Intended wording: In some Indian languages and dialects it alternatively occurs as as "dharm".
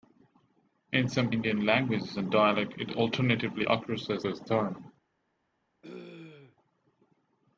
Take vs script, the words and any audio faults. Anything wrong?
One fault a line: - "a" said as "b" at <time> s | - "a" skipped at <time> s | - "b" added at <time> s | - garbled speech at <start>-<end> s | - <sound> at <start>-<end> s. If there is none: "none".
- throat clearing at 5.8-6.6 s